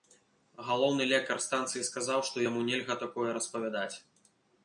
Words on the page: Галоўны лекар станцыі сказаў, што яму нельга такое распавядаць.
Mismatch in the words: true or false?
false